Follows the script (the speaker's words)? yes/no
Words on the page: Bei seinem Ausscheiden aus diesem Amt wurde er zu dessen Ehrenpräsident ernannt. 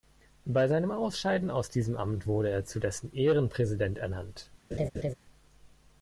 yes